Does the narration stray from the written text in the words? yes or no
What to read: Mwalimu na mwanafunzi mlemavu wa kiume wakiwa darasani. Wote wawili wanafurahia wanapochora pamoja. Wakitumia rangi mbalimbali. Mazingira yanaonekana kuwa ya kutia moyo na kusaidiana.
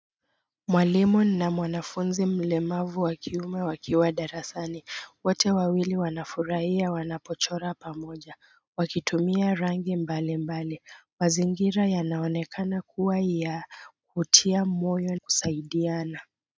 yes